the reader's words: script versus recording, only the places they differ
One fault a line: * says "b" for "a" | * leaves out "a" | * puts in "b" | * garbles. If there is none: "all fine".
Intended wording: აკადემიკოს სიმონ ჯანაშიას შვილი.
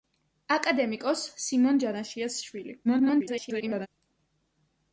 * garbles